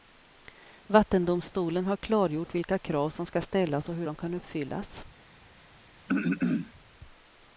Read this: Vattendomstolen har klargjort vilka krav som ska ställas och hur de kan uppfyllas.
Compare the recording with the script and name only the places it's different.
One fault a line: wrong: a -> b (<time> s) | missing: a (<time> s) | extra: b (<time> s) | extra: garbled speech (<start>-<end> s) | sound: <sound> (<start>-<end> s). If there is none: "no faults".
sound: throat clearing (6.1-6.7 s)